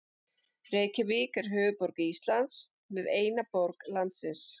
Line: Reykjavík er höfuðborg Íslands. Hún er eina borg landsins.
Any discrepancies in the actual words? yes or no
no